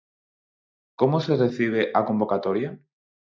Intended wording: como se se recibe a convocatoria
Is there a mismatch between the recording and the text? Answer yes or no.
yes